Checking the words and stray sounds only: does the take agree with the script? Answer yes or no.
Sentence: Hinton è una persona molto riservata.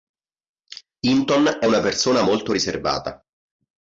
yes